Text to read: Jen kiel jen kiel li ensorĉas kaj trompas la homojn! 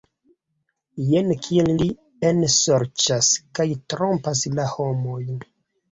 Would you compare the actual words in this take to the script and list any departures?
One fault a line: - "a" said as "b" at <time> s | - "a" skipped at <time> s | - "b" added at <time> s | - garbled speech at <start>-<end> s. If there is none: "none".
- "jen kiel" skipped at 1.7 s